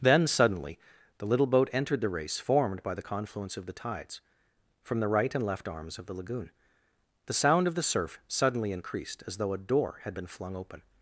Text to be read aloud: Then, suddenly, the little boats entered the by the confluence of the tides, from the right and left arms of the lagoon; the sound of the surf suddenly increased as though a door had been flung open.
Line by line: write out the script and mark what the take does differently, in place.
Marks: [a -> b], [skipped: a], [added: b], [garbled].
Then, suddenly, the little [boats -> boat] entered the [added: race formed] by the confluence of the tides, from the right and left arms of the lagoon; the sound of the surf suddenly increased as though a door had been flung open.